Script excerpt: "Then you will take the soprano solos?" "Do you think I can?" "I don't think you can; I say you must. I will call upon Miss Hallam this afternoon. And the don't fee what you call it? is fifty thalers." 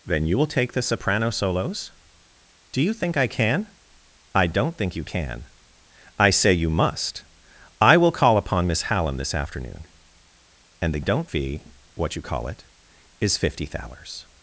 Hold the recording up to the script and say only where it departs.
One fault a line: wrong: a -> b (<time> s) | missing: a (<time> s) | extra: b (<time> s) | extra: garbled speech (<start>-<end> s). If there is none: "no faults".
no faults